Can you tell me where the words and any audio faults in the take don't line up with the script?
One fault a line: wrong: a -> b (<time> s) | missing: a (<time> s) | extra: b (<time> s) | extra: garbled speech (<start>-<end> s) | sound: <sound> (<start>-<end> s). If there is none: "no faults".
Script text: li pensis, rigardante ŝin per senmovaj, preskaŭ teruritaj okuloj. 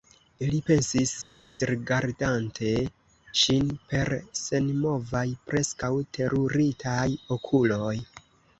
no faults